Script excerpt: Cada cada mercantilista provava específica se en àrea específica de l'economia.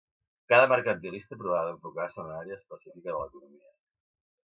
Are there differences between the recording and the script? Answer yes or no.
yes